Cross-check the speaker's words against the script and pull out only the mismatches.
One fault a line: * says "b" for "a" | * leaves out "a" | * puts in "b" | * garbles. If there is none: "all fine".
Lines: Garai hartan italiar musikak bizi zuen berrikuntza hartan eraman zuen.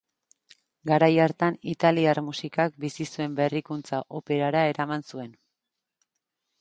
* says "operara" for "hartan"